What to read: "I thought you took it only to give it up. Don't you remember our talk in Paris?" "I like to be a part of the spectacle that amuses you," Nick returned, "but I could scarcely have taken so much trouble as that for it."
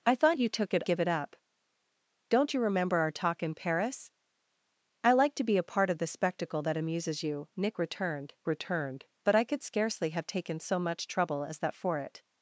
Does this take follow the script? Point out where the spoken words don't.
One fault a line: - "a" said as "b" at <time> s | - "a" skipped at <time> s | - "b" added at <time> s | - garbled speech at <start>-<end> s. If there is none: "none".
- "only to" skipped at 0.8 s
- "returned" added at 8.5 s